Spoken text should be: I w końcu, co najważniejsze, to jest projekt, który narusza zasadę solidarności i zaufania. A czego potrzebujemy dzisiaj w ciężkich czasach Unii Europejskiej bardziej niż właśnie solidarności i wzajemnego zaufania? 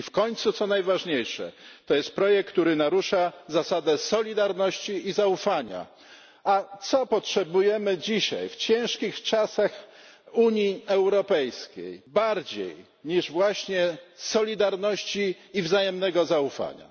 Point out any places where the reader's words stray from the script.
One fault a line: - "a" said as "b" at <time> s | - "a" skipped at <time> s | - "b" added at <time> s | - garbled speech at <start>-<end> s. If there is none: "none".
none